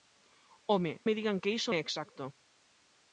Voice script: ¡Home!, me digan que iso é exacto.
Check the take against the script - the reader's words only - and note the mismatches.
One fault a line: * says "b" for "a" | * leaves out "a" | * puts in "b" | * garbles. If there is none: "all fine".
all fine